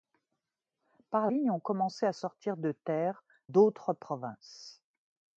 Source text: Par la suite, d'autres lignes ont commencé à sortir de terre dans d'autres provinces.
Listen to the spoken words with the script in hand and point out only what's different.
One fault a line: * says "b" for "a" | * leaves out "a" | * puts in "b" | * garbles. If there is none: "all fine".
* leaves out "la suite d'autres"
* leaves out "dans"